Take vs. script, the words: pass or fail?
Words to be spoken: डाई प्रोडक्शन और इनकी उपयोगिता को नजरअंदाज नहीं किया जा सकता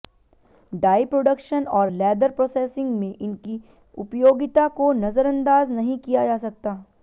fail